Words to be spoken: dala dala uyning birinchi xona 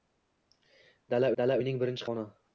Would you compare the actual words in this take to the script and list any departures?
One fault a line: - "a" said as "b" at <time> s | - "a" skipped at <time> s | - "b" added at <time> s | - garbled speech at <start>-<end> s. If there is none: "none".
none